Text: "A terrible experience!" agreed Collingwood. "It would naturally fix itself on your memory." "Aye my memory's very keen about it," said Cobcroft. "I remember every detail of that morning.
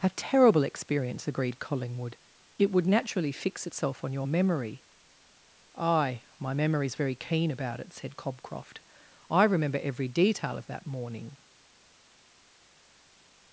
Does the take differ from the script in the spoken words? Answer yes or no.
no